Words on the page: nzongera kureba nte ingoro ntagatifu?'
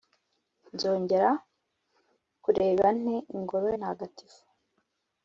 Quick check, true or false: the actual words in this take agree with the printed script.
true